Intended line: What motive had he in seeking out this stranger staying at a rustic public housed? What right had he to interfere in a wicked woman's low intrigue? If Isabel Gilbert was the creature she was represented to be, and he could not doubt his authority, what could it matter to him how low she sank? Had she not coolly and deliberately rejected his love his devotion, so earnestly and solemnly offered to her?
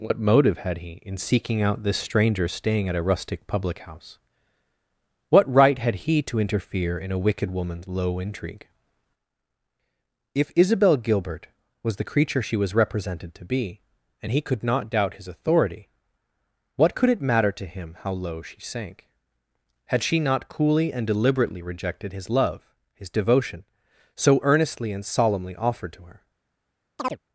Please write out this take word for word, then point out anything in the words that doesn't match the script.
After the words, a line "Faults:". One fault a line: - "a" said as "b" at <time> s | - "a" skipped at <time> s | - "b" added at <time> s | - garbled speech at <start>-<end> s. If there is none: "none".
What motive had he in seeking out this stranger staying at a rustic public house? What right had he to interfere in a wicked woman's low intrigue? If Isabel Gilbert was the creature she was represented to be, and he could not doubt his authority, what could it matter to him how low she sank? Had she not coolly and deliberately rejected his love his devotion, so earnestly and solemnly offered to her?
Faults:
- "housed" said as "house" at 3.8 s